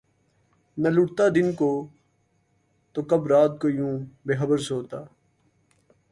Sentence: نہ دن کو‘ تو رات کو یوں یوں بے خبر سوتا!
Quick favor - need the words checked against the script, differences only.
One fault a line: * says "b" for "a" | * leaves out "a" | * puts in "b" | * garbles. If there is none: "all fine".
* puts in "لٹتا"
* puts in "کب"
* leaves out "یوں"